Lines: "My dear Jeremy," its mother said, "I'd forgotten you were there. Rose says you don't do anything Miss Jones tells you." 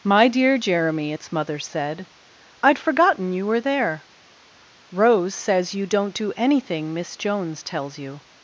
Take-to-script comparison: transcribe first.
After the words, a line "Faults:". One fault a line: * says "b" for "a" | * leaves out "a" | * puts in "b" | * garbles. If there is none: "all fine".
"My dear Jeremy," its mother said, "I'd forgotten you were there. Rose says you don't do anything Miss Jones tells you."
Faults:
all fine